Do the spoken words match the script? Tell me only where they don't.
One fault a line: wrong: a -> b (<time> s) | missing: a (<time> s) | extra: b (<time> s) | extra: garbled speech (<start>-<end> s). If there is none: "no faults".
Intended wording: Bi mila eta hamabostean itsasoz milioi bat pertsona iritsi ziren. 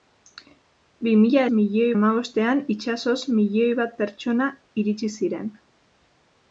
wrong: eta -> milioi (1.6 s)